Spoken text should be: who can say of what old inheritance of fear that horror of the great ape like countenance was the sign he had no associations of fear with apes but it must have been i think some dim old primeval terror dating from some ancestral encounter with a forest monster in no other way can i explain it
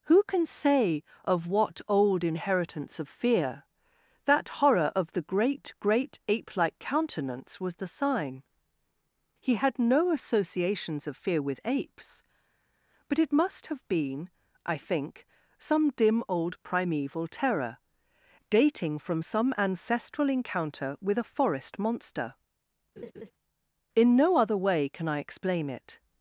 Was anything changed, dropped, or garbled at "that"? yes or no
no